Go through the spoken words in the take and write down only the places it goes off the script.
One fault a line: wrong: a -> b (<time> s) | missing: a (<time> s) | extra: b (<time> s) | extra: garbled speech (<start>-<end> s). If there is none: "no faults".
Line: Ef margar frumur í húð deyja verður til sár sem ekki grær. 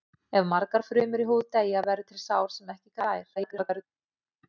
extra: garbled speech (3.4-3.8 s)